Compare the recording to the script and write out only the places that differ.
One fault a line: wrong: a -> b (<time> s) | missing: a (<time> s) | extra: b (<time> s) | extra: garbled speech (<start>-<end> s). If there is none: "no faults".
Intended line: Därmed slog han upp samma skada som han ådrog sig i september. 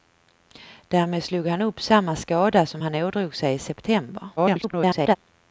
extra: garbled speech (4.4-5.2 s)